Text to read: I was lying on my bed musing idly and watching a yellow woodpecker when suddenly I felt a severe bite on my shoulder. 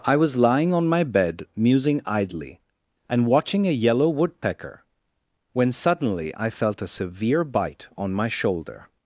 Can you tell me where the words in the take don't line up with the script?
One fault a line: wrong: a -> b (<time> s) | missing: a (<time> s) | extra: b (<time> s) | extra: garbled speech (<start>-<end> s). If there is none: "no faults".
no faults